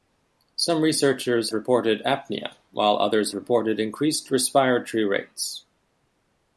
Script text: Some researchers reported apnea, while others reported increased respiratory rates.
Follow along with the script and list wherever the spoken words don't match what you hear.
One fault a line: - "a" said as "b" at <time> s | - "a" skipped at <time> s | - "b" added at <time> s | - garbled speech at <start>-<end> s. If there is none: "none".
none